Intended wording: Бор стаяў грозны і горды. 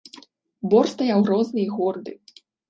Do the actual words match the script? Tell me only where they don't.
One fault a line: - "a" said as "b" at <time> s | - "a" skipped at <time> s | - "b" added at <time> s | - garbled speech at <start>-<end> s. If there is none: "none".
none